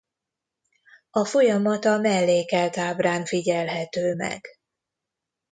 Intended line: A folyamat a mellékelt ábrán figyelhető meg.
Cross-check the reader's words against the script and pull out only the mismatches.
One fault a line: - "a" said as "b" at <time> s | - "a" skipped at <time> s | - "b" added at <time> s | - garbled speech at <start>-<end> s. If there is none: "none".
none